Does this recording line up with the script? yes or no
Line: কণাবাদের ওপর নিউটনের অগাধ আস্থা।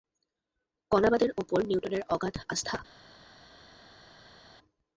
yes